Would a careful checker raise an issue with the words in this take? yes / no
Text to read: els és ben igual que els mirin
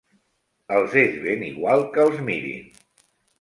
no